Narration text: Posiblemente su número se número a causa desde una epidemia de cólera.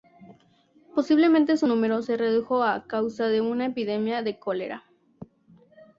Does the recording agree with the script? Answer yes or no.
no